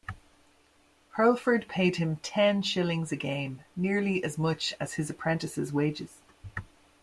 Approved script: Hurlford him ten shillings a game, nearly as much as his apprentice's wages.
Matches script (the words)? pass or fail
fail